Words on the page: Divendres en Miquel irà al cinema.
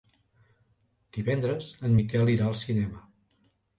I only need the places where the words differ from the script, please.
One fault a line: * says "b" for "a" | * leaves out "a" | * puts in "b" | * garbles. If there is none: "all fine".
all fine